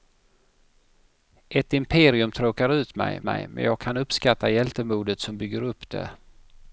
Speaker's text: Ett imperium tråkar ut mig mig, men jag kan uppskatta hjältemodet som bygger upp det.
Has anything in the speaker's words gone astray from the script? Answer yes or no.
no